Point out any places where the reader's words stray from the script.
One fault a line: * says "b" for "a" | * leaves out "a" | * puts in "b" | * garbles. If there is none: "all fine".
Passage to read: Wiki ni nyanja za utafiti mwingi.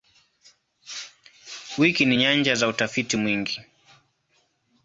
all fine